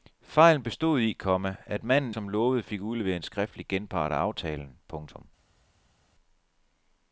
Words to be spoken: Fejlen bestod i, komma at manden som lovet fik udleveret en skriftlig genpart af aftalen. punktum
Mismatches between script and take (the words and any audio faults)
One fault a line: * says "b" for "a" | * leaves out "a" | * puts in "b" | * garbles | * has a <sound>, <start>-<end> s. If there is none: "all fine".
all fine